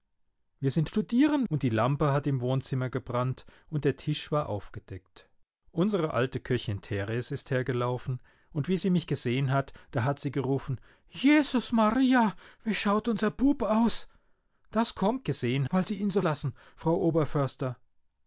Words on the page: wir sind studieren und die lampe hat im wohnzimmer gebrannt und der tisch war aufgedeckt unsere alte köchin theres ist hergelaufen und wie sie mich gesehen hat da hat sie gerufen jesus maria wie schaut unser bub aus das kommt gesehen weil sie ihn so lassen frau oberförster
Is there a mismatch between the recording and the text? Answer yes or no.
no